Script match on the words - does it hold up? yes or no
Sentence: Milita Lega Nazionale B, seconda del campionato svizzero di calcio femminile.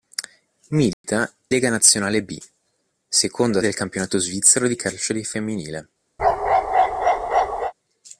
yes